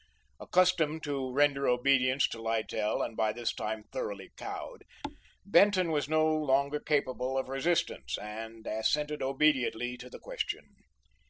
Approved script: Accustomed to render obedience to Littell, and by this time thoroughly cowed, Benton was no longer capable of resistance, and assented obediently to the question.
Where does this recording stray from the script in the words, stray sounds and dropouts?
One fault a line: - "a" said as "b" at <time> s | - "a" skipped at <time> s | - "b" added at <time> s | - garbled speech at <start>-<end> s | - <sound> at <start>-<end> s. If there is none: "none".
- thud at 5.0-5.2 s